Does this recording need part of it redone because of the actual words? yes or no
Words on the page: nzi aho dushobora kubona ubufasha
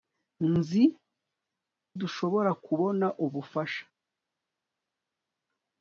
yes